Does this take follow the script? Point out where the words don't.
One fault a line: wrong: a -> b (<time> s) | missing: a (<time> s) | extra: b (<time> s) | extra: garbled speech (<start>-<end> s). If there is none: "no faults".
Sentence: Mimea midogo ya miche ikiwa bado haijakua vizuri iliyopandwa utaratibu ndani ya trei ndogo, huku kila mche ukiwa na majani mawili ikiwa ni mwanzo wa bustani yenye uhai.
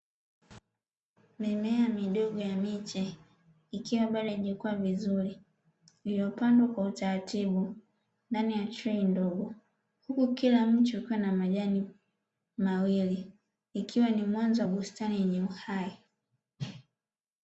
extra: kwa (6.7 s)